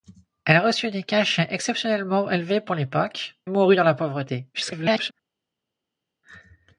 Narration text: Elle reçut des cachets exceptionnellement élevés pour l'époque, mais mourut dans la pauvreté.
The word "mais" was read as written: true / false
false